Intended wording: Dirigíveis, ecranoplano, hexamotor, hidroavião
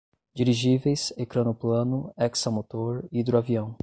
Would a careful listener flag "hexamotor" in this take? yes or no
no